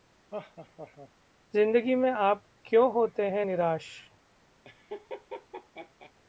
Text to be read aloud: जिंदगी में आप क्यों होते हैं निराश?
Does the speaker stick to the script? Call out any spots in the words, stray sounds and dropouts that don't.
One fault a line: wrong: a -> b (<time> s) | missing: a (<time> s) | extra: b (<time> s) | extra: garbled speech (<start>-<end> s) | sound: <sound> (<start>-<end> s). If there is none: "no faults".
sound: laugh (0.3-1.1 s)
sound: laugh (4.6-6.1 s)